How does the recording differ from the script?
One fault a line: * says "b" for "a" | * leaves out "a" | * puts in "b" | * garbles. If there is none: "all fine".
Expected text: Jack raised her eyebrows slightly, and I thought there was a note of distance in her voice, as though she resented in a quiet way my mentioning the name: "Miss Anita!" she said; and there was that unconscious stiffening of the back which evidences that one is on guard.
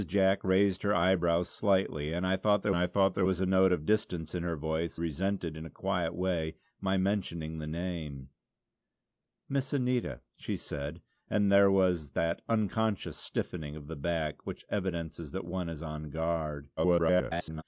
* puts in "I thought there"
* leaves out "as though she"
* garbles